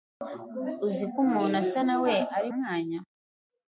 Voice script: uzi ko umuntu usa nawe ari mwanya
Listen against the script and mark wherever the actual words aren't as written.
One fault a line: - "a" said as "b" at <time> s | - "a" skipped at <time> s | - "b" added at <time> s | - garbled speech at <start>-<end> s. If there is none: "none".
none